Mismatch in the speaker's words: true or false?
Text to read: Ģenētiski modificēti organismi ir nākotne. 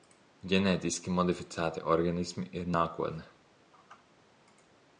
false